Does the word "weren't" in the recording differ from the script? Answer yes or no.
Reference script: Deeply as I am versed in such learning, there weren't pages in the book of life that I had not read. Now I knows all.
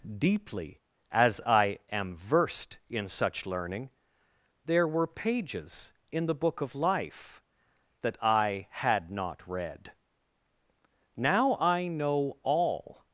yes